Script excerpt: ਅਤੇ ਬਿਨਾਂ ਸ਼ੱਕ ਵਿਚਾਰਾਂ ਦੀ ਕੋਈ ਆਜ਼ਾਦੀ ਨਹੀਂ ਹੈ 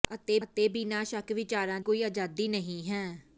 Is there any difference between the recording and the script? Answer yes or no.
yes